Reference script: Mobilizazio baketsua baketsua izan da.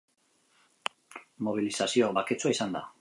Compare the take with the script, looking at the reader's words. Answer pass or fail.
fail